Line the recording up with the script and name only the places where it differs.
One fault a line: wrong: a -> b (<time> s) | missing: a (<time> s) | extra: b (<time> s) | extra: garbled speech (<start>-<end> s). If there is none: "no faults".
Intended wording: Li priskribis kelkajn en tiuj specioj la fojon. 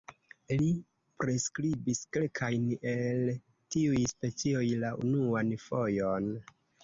wrong: en -> el (2.9 s)
extra: unuan (5.1 s)